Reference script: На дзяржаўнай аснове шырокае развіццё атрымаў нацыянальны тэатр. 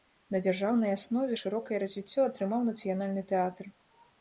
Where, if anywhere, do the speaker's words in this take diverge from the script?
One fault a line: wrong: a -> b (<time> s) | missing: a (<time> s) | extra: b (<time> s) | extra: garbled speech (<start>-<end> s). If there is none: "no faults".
no faults